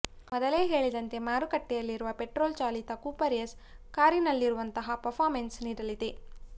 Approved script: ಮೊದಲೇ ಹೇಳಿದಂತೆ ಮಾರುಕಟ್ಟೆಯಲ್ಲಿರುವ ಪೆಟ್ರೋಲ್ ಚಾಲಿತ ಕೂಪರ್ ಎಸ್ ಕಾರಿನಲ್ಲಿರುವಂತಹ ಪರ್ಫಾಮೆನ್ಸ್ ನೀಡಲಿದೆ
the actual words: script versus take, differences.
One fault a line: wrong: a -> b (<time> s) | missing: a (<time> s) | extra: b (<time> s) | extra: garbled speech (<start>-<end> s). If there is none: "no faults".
no faults